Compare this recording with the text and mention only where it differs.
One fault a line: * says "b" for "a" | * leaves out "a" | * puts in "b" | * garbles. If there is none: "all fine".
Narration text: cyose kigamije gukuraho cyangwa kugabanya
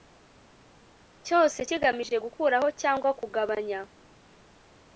all fine